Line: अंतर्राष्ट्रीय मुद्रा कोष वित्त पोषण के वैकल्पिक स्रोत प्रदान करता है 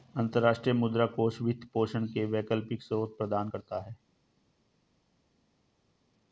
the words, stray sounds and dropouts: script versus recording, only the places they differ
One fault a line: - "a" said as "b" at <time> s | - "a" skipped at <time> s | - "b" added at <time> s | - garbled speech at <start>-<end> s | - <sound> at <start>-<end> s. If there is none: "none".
none